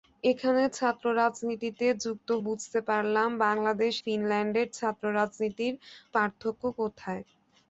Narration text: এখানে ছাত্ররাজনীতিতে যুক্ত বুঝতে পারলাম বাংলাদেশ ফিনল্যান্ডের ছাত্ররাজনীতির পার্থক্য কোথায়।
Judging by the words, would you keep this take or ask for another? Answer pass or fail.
pass